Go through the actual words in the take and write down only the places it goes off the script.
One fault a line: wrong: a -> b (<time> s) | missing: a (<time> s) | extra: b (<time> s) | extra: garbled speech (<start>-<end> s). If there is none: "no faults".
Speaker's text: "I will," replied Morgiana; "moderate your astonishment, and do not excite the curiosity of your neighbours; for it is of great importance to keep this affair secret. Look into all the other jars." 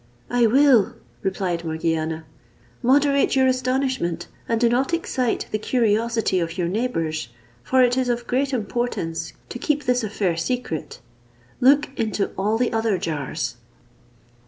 no faults